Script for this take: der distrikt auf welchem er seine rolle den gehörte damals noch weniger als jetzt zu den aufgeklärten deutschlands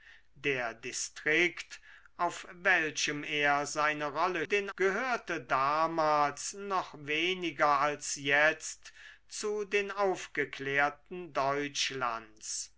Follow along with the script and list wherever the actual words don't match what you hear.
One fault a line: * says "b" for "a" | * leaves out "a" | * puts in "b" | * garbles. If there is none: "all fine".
all fine